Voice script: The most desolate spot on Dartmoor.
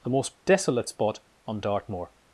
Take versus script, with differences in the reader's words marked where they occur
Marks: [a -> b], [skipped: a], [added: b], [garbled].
The most desolate spot on Dartmoor.